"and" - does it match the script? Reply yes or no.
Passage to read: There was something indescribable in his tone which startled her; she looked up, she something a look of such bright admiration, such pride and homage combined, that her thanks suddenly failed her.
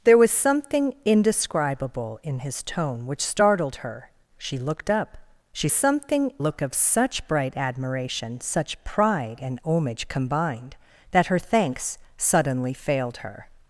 yes